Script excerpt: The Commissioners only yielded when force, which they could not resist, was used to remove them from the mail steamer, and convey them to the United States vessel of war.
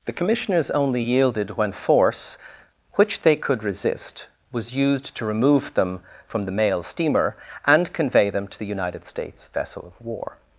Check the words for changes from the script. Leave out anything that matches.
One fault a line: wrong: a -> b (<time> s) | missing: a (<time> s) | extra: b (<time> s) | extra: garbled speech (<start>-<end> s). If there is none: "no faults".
missing: not (3.6 s)